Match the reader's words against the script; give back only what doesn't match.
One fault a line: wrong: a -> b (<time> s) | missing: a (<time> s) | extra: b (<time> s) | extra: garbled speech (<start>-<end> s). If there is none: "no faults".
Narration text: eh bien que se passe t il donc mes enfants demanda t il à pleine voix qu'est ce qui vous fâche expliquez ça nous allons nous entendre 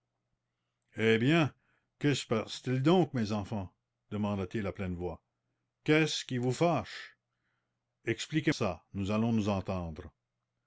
no faults